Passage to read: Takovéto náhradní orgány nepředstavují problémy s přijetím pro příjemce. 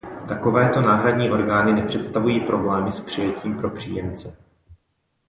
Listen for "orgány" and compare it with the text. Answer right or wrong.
right